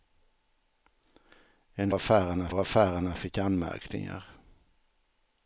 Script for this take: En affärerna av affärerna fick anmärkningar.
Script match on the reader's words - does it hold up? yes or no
yes